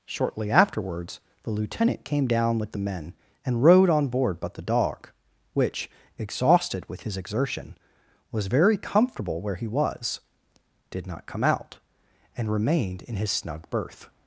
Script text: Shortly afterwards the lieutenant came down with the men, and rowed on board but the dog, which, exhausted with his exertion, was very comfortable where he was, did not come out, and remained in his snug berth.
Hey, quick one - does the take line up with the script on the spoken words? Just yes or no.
yes